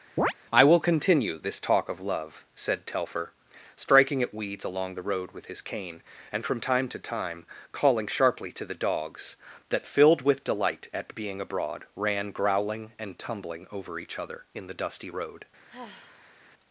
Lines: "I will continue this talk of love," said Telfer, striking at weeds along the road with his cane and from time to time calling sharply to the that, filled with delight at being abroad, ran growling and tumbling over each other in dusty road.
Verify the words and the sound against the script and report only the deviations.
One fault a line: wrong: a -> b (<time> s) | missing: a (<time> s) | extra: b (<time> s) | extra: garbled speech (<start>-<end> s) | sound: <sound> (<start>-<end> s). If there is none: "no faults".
sound: chirp (0.2-0.3 s)
extra: dogs (8.7 s)
extra: the (14.7 s)
sound: sigh (15.7-16.3 s)